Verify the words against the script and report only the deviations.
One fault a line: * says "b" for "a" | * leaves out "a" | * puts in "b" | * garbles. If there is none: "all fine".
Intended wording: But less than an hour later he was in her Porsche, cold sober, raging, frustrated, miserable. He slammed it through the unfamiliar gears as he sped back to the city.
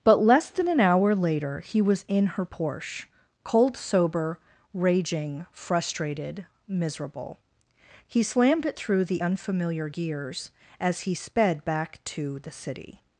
all fine